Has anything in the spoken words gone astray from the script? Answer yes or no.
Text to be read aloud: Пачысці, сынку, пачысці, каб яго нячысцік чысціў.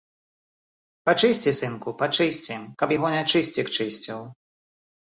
no